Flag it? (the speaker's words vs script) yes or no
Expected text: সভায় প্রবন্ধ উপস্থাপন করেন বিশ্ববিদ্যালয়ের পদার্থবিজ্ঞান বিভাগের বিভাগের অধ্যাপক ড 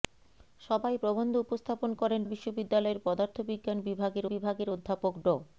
no